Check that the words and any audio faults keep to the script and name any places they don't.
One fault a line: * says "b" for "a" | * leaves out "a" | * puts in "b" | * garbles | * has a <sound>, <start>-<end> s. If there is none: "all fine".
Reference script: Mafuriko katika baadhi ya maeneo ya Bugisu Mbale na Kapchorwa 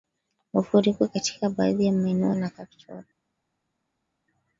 * leaves out "ya Bugisu Mbale"